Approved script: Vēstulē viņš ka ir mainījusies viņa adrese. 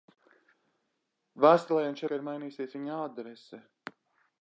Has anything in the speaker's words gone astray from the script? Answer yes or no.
no